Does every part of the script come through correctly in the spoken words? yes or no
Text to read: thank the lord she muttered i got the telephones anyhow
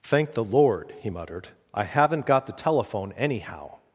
no